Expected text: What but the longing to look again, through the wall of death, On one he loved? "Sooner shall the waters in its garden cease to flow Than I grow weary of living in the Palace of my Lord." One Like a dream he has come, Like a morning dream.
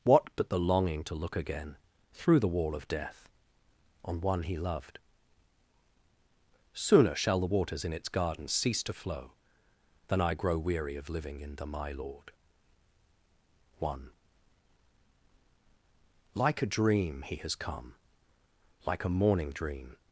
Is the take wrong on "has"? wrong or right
right